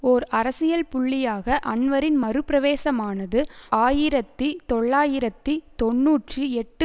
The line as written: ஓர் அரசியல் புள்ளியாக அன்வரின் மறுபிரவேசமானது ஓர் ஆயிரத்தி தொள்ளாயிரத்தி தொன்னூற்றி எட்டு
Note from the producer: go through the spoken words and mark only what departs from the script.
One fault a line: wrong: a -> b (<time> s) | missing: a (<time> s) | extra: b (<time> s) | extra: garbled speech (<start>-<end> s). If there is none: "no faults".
missing: ஓர் (3.4 s)